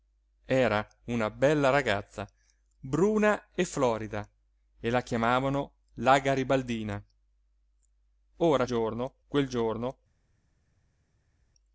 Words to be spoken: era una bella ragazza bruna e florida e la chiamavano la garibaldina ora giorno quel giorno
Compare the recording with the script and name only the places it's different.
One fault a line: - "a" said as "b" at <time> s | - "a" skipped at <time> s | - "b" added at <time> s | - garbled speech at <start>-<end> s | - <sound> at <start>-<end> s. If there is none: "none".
none